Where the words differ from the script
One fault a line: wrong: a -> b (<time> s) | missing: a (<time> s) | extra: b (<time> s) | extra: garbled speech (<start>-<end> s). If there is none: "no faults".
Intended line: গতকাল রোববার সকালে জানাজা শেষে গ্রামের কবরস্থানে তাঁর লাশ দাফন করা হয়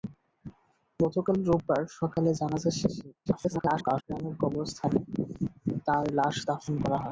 extra: garbled speech (3.3-4.0 s)